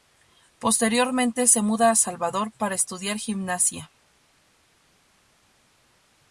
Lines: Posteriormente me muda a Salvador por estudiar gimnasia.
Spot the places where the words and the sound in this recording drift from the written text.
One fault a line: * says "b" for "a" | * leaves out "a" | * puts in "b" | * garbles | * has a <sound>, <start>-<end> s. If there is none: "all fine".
* says "se" for "me"
* says "para" for "por"